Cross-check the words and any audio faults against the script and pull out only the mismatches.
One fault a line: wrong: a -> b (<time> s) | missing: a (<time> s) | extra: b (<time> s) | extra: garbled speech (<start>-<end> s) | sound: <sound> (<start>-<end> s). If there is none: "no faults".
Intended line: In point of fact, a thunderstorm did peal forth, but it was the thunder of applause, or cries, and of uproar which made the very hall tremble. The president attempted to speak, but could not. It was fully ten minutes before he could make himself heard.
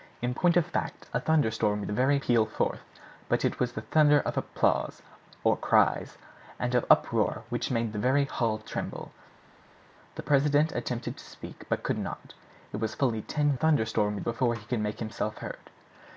wrong: did -> very (1.9 s)
wrong: minutes -> thunderstorm (13.5 s)